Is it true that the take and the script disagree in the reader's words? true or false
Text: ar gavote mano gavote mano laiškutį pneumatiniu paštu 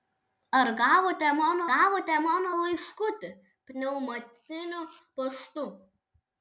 false